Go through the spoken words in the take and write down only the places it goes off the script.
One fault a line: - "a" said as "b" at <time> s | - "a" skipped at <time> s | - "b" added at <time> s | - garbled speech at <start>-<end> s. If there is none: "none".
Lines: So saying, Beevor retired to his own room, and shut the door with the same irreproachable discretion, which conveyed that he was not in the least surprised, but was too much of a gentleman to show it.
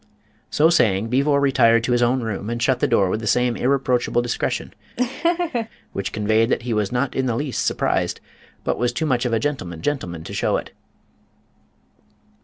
- "gentleman" added at 9.8 s